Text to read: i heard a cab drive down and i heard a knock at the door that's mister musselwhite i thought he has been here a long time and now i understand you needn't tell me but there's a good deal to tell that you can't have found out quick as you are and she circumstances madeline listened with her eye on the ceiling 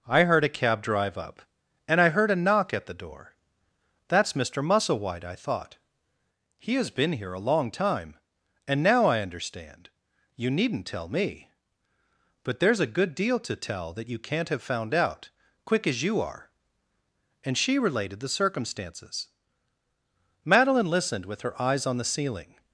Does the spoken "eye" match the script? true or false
false